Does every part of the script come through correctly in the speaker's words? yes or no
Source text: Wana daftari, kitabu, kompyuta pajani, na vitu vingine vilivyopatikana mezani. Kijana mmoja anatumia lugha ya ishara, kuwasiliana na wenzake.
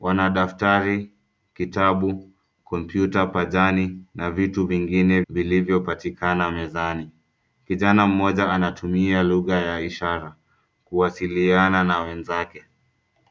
yes